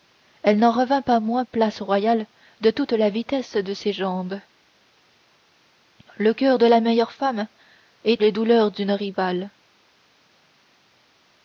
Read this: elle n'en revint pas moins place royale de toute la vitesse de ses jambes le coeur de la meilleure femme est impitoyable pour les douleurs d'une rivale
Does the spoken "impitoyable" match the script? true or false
false